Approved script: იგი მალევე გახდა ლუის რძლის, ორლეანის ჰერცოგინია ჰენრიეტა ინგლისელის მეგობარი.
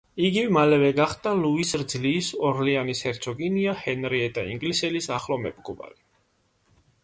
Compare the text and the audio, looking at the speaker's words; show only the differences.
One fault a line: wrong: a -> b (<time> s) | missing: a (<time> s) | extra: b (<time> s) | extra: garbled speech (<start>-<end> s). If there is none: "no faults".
extra: ახლო (5.2 s)